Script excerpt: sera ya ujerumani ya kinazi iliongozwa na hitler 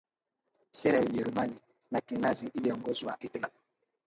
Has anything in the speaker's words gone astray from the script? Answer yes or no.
yes